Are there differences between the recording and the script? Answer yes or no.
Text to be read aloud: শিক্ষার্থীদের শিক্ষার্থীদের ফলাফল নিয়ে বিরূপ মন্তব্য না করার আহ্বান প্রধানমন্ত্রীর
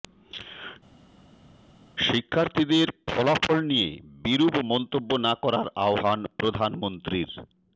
yes